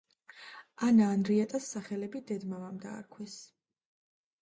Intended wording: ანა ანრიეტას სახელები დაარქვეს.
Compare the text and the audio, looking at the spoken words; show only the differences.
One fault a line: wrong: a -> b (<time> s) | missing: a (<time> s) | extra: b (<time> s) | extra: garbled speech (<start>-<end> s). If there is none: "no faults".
extra: დედ მამამ (2.3 s)